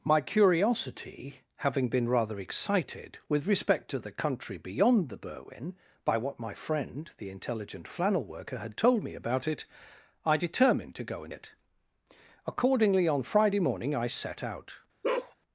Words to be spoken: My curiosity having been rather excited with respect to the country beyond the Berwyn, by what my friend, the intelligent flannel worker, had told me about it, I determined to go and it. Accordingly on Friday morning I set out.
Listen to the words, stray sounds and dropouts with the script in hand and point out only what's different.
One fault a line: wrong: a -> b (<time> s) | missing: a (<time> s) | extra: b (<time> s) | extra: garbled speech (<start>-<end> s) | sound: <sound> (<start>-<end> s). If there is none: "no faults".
sound: bark (15.0-15.4 s)